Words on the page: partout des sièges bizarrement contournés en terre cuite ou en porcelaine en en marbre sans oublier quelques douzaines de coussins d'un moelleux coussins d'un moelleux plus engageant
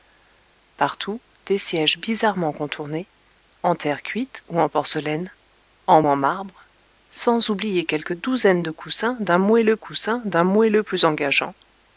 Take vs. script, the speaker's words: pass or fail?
pass